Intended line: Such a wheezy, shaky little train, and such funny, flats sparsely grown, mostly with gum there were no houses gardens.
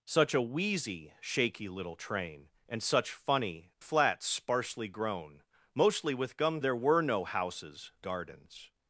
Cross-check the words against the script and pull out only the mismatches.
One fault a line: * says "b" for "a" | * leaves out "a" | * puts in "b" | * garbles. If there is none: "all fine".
all fine